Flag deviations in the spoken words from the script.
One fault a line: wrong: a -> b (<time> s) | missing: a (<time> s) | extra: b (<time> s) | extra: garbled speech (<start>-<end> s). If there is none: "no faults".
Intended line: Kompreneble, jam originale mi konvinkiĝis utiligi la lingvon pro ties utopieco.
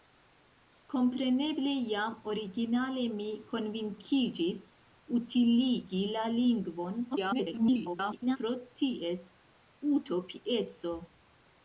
extra: garbled speech (7.1-8.4 s)